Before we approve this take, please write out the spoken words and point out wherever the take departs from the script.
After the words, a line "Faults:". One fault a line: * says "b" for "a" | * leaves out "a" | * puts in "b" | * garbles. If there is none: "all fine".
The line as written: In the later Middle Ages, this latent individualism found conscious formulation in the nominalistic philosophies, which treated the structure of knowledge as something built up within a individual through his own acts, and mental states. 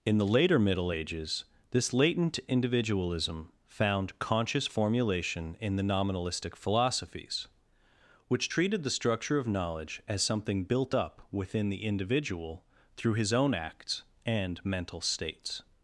In the later Middle Ages, this latent individualism found conscious formulation in the nominalistic philosophies, which treated the structure of knowledge as something built up within the individual through his own acts, and mental states.
Faults:
* says "the" for "a"